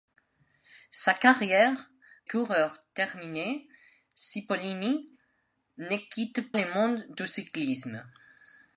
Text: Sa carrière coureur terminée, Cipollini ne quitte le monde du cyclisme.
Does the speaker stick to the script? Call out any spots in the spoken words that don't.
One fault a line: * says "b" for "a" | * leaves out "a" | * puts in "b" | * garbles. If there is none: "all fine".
all fine